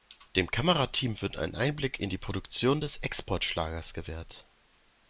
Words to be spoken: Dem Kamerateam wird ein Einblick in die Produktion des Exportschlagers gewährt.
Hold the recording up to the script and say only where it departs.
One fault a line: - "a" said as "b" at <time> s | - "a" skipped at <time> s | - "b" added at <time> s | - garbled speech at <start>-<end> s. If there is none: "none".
none